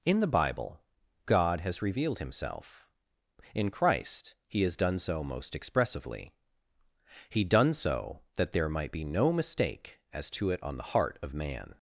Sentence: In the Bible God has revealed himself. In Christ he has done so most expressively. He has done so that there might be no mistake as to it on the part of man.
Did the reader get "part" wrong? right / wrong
wrong